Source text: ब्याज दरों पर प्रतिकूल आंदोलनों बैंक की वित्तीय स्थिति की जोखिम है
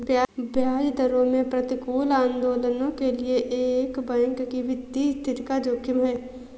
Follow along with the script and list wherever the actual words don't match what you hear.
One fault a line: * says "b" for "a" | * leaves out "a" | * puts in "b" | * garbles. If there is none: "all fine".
* says "में" for "पर"
* puts in "के लिए एक"
* says "का" for "की"